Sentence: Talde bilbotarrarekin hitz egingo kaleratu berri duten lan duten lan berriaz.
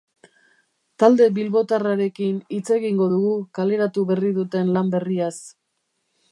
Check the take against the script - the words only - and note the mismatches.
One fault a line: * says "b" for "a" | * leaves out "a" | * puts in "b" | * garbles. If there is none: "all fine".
* puts in "dugu"
* leaves out "duten lan"